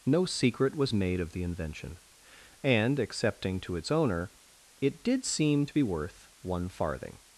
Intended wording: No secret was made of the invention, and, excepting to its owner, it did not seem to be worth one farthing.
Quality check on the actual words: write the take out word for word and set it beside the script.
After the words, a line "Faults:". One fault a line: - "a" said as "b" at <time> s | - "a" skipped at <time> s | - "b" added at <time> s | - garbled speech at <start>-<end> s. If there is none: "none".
No secret was made of the invention, and, excepting to its owner, it did seem to be worth one farthing.
Faults:
- "not" skipped at 5.2 s